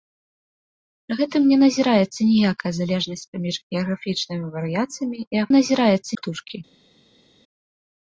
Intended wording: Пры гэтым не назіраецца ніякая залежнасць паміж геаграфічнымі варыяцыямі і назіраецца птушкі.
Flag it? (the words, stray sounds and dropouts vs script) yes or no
no